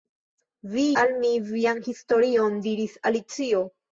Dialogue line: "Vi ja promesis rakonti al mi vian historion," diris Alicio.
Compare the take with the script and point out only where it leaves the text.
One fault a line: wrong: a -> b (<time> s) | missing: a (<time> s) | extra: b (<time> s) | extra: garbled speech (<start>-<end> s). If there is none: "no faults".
missing: ja promesis rakonti (0.8 s)